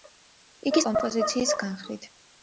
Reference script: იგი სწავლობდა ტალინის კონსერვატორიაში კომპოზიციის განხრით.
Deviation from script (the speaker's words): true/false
true